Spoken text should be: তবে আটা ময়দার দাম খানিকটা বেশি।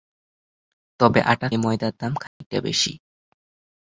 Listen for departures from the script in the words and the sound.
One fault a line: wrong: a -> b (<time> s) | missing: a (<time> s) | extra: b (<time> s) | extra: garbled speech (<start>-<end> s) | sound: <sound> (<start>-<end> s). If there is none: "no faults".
sound: dropout (2.3-2.4 s)